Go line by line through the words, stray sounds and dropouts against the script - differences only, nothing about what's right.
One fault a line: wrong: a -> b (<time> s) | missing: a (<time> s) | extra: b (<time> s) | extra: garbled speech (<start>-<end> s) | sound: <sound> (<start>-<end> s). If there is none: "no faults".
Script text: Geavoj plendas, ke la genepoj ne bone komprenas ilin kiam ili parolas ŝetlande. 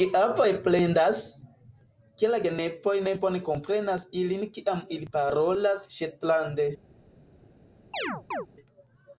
sound: chirp (7.9-8.5 s)